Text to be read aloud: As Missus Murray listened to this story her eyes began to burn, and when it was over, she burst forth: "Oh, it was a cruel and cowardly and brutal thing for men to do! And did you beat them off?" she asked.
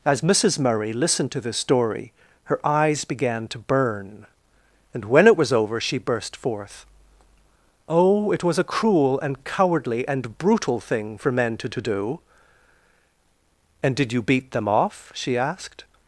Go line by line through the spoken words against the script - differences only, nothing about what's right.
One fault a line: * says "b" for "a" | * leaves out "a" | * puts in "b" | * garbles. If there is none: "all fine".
* puts in "to"